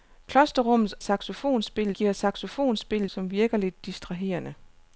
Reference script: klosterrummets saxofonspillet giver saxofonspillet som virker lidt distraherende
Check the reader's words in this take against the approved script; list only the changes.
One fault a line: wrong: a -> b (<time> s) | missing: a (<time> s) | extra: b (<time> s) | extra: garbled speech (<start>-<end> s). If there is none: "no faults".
no faults